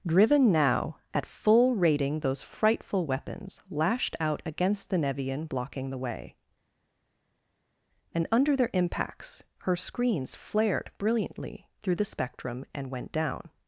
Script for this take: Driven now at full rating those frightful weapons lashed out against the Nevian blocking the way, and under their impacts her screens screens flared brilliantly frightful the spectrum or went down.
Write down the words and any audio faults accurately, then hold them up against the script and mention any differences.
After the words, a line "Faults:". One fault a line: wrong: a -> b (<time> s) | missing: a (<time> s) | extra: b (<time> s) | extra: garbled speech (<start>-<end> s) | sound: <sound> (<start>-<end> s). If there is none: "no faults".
Driven now at full rating those frightful weapons lashed out against the Nevian blocking the way, and under their impacts her screens flared brilliantly through the spectrum and went down.
Faults:
missing: screens (10.3 s)
wrong: frightful -> through (11.8 s)
wrong: or -> and (12.7 s)